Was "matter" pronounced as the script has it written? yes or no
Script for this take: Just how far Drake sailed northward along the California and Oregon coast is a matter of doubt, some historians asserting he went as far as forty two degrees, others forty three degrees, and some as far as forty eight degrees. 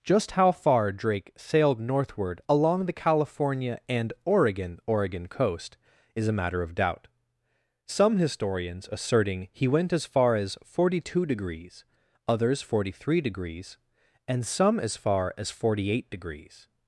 yes